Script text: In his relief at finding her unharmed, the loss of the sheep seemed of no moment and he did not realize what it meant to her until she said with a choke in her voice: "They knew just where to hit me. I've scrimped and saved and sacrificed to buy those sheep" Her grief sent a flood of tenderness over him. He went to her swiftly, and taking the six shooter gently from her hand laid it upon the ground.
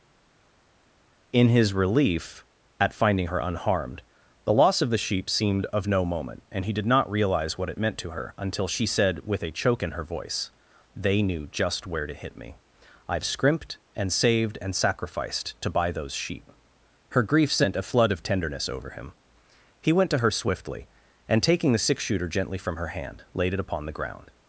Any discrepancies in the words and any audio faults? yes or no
no